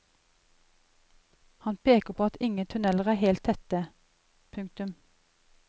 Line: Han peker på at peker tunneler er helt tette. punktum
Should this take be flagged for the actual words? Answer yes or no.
yes